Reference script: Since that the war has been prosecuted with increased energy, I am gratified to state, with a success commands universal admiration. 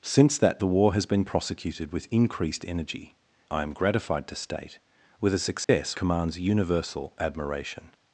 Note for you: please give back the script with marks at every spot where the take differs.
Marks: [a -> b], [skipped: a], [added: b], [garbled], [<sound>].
Since that the war has been prosecuted with increased energy, I am gratified to state, with a success [dropout] commands universal admiration.